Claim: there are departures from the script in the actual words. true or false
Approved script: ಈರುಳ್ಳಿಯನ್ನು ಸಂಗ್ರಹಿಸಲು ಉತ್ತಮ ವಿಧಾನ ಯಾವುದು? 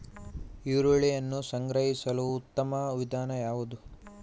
false